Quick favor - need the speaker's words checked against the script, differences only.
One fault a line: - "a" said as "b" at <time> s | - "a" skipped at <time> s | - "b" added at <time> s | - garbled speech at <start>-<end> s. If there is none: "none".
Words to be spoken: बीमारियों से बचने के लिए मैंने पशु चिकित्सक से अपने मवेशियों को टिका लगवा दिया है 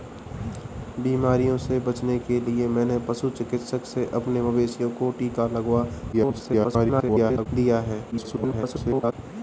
- garbled speech at 6.1-7.5 s
- garbled speech at 8.1-9.1 s